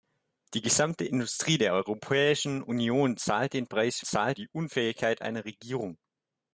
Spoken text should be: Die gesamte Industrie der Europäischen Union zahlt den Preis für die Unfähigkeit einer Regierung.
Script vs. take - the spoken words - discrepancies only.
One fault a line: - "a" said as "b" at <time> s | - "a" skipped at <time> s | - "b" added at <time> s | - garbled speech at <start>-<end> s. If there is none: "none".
- "für" said as "zahlt" at 4.0 s